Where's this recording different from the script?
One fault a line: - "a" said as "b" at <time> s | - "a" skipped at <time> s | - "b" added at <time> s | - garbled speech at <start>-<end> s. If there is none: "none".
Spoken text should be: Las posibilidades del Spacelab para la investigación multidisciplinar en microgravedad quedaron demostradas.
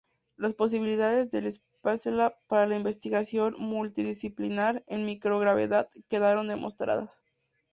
none